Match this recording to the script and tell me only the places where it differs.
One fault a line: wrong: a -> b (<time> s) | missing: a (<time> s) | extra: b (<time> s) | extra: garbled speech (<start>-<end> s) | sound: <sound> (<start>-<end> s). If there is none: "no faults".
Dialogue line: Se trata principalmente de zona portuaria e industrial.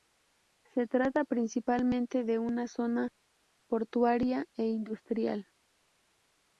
extra: una (2.4 s)